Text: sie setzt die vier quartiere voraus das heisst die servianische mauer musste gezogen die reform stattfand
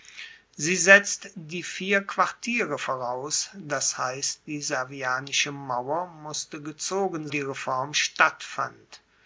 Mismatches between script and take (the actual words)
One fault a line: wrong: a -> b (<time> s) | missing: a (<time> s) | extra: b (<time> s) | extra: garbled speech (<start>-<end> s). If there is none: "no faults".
no faults